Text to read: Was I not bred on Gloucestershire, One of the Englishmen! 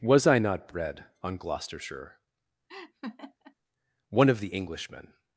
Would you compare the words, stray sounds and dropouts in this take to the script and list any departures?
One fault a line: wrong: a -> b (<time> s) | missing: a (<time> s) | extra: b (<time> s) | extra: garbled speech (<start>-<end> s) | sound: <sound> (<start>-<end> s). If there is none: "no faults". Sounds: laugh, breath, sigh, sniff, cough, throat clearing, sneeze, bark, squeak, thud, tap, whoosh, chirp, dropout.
sound: laugh (2.7-3.5 s)